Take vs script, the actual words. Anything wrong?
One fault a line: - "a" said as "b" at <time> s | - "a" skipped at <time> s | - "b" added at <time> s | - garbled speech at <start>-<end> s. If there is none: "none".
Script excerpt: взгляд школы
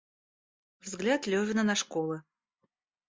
- "левина на" added at 1.3 s